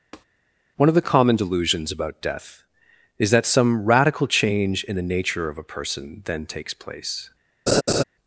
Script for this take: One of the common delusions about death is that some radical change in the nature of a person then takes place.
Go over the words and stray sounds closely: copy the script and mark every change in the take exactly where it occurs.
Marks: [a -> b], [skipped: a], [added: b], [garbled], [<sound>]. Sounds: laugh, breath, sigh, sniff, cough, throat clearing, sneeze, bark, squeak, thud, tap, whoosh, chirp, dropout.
[tap] One of the common delusions about death is that some radical change in the nature of a person then takes place. [laugh]